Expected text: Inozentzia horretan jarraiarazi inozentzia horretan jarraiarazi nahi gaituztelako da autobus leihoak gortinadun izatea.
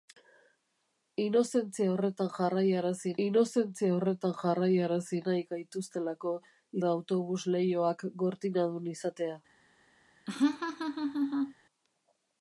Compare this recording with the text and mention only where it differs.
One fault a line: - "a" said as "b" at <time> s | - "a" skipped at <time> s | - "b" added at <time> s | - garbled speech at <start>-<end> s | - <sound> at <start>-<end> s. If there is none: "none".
- laugh at 10.3-11.5 s